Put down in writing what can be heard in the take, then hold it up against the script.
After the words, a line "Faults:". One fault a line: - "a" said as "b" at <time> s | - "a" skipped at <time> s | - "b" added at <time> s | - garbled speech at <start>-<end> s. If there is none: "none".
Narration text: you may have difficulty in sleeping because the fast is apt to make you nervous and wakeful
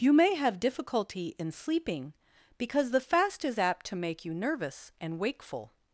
you may have difficulty in sleeping because the fast is apt to make you nervous and wakeful
Faults:
none